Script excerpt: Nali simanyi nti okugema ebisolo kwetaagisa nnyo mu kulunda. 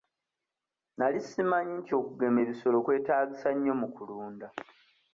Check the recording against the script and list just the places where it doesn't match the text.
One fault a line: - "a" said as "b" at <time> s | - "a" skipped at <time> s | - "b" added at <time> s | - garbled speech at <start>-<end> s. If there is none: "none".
none